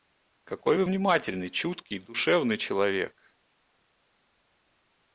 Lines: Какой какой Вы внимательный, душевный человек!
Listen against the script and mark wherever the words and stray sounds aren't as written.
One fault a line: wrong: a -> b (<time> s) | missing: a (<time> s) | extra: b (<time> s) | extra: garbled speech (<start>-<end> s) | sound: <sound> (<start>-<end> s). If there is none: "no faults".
missing: какой (0.8 s)
extra: чуткий (1.5 s)